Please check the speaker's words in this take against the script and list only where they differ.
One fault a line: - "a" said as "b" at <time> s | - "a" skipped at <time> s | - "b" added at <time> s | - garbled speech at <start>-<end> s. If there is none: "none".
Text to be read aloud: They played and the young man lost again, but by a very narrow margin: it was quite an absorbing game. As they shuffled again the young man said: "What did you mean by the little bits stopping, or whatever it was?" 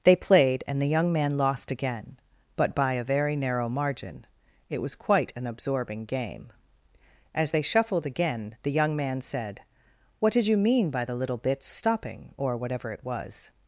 none